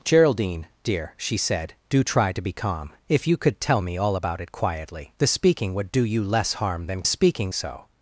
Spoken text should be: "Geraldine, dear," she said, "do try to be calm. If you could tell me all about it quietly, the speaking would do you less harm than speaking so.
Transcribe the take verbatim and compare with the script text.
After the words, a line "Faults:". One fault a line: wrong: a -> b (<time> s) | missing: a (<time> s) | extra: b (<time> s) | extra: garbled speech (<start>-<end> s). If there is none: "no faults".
"Geraldine, dear," she said, "do try to be calm. If you could tell me all about it quietly, the speaking would do you less harm than speaking so.
Faults:
no faults